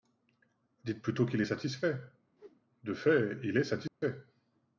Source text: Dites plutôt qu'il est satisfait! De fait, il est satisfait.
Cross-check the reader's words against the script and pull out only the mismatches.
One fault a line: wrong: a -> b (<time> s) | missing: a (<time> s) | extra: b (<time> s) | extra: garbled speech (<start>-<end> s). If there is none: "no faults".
no faults